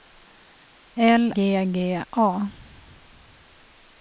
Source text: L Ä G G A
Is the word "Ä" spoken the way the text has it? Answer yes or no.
no